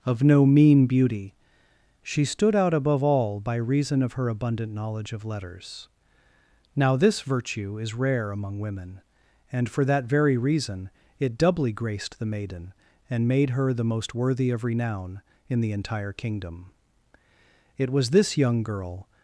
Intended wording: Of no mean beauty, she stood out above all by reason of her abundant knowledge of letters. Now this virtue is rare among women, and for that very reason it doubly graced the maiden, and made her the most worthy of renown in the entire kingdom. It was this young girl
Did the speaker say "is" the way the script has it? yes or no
yes